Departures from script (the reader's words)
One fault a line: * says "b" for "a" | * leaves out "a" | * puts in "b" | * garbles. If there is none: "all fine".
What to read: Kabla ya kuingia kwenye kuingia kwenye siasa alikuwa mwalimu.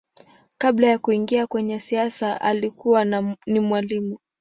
* leaves out "kuingia kwenye"
* puts in "ni"